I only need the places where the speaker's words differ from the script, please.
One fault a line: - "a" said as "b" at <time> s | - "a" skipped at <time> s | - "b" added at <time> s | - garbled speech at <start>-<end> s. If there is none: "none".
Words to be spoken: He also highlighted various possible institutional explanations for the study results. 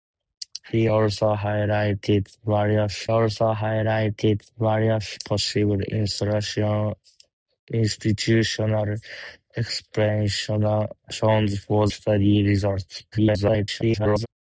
- "also highlighted various" added at 3.1 s
- "the" skipped at 11.9 s
- garbled speech at 13.1-14.3 s